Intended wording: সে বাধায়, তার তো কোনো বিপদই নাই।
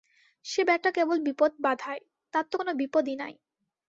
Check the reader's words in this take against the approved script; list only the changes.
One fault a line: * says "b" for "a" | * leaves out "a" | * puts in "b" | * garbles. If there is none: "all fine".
* puts in "বেটা কেবল বিপদ"